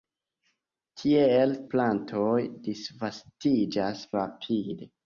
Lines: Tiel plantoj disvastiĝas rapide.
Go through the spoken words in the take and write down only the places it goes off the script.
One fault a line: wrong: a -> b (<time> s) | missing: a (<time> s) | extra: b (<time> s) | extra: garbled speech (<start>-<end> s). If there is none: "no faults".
no faults